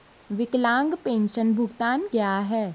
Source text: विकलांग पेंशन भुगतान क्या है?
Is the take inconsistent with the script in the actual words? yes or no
no